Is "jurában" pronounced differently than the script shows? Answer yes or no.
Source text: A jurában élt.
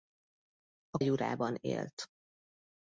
no